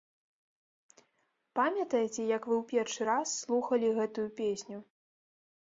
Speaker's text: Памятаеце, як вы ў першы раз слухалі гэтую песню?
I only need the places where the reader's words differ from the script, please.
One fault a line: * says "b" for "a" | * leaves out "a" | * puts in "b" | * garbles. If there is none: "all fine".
all fine